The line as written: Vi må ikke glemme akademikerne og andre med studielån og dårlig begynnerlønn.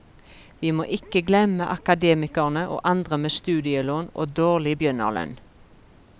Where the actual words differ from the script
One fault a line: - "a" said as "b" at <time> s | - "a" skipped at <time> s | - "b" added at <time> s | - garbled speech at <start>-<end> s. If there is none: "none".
none